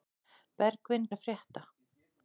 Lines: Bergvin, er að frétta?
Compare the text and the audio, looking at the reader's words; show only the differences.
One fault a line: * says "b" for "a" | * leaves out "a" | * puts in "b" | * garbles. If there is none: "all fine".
all fine